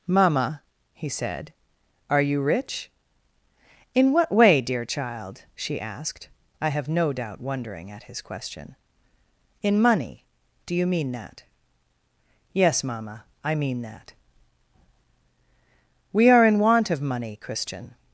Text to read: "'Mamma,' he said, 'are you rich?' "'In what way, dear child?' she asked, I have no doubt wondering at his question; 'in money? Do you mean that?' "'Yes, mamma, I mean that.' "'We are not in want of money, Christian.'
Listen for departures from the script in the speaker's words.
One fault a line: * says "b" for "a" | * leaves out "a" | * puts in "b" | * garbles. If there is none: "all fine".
* leaves out "not"